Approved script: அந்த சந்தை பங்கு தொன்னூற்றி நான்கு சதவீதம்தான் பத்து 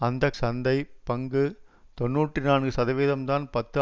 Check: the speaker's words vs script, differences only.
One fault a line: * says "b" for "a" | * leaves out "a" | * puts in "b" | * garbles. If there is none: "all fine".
all fine